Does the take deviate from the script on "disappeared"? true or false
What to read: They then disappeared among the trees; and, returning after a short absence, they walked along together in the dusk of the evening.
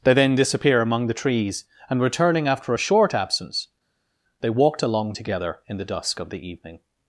true